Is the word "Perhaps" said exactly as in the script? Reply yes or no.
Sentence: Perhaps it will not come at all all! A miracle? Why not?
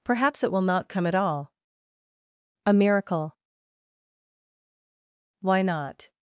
yes